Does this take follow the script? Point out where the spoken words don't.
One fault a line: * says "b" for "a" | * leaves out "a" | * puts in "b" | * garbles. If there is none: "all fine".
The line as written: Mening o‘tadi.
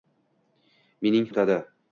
all fine